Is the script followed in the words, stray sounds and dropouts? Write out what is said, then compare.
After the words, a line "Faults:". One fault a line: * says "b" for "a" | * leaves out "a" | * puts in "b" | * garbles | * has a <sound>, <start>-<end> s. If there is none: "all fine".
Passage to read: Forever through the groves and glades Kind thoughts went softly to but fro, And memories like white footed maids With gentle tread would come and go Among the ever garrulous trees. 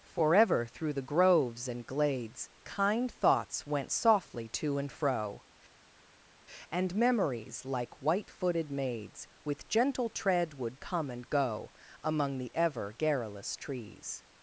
Forever through the groves and glades Kind thoughts went softly to and fro, And memories like white footed maids With gentle tread would come and go Among the ever garrulous trees.
Faults:
* says "and" for "but"